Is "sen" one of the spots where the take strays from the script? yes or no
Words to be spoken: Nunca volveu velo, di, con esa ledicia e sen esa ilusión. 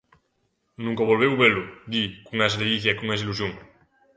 yes